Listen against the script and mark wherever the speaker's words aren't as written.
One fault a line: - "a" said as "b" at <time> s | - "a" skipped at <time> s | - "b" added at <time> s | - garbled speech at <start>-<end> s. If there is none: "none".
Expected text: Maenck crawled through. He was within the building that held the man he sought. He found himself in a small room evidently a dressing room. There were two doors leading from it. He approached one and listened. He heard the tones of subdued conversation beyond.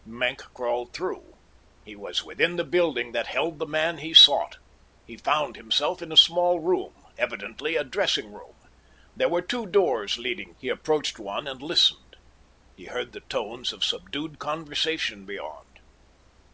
- "from it" skipped at 10.6 s